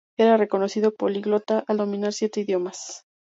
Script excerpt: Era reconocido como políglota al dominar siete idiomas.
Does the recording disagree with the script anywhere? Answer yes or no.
yes